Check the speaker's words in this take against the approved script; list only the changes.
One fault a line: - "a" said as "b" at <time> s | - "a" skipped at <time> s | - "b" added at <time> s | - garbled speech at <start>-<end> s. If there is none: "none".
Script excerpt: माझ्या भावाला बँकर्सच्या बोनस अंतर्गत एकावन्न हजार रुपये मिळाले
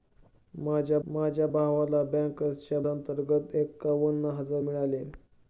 - "माझ्या" added at 1.1 s
- "बोनस" skipped at 2.8 s
- "रुपये" skipped at 4.6 s